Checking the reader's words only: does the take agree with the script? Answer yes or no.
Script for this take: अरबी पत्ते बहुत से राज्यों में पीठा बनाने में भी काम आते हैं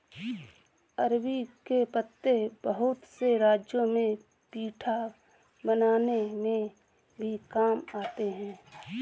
no